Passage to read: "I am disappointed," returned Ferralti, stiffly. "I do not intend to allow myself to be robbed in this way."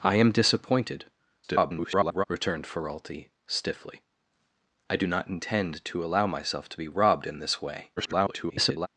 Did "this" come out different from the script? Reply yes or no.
no